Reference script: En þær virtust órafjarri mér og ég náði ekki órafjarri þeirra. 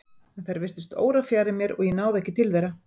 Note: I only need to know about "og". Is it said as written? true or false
true